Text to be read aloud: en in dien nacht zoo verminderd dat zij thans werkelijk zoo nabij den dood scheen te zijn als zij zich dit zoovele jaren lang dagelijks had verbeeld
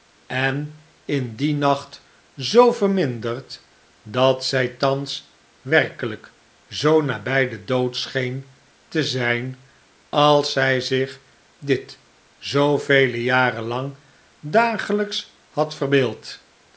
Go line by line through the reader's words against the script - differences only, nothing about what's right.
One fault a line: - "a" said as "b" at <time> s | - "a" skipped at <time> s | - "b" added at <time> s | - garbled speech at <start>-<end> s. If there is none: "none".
none